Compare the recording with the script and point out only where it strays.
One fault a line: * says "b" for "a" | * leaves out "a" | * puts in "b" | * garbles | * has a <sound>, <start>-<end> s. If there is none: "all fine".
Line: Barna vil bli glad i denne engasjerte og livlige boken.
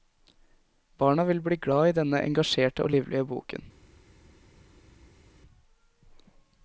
all fine